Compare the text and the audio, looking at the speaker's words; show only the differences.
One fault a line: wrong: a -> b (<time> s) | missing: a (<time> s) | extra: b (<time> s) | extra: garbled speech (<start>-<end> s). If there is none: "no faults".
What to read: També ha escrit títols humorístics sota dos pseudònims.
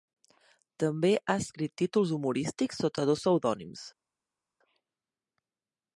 no faults